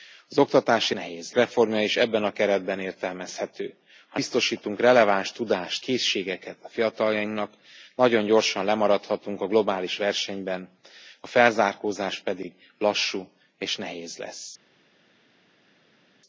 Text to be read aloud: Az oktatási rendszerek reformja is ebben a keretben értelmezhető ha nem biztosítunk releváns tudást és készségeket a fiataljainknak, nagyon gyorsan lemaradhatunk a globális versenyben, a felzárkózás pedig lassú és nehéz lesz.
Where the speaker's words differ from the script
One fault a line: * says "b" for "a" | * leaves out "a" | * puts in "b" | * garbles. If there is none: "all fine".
* says "nehéz" for "rendszerek"
* leaves out "nem"
* leaves out "és"